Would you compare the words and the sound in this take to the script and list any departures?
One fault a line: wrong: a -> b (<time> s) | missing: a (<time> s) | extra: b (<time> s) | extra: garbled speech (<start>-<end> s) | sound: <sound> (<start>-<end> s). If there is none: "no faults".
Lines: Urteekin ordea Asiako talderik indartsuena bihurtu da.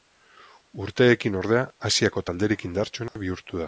sound: dropout (3.1-3.2 s)